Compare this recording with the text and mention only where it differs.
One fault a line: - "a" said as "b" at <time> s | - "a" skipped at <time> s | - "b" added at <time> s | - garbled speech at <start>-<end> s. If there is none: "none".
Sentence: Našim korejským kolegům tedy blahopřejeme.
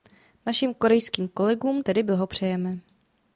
none